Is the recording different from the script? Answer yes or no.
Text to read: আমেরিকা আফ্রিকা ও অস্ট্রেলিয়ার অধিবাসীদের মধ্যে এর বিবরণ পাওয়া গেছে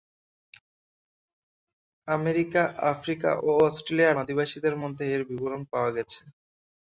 no